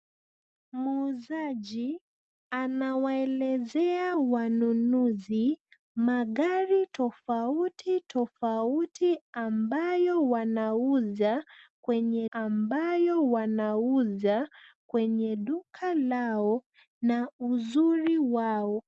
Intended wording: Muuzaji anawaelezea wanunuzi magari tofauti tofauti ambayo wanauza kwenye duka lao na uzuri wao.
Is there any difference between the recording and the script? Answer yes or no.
yes